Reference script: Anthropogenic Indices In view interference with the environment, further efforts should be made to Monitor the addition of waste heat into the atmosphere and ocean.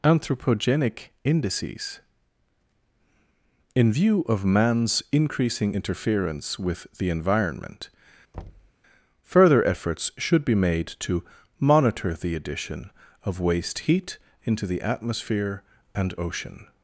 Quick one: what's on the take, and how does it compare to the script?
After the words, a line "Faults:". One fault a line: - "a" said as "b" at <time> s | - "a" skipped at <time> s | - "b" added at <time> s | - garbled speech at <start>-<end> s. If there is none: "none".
Anthropogenic Indices In view of man's increasing interference with the environment, further efforts should be made to Monitor the addition of waste heat into the atmosphere and ocean.
Faults:
- "of man's increasing" added at 4.2 s